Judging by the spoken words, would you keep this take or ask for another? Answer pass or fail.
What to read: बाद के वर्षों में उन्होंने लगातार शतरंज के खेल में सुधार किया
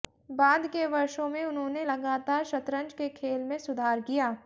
pass